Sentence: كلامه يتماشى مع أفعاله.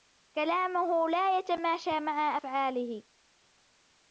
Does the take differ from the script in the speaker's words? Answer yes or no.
yes